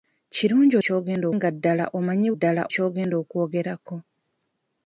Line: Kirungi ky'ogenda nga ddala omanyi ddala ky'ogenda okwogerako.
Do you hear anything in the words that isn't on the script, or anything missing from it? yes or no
no